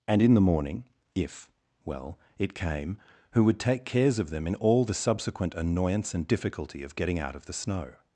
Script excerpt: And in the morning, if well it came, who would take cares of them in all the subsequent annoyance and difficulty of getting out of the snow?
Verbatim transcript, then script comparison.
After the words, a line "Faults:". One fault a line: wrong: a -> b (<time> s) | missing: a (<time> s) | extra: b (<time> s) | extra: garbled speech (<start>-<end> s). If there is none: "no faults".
And in the morning, if well it came, who would take cares of them in all the subsequent annoyance and difficulty of getting out of the snow?
Faults:
no faults